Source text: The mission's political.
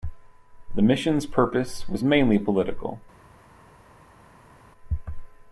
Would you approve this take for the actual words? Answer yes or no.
no